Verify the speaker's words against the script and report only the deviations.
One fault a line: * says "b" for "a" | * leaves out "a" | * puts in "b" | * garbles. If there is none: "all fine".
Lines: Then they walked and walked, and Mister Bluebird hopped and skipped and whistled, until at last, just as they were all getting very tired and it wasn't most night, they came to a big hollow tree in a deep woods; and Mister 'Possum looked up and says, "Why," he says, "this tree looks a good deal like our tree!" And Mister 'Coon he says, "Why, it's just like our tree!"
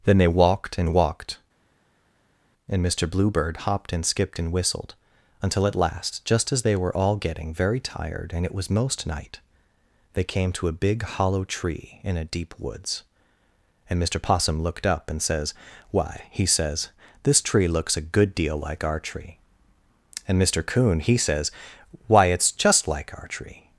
* says "was" for "wasn't"